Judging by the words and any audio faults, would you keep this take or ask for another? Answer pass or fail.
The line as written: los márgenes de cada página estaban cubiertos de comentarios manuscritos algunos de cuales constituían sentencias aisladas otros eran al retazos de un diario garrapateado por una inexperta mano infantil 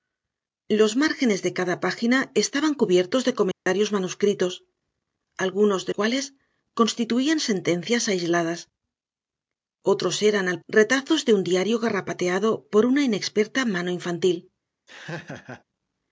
fail